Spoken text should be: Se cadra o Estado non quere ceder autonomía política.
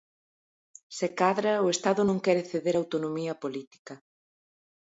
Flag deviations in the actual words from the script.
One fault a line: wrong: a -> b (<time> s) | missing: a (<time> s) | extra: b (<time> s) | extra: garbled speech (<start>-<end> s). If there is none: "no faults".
no faults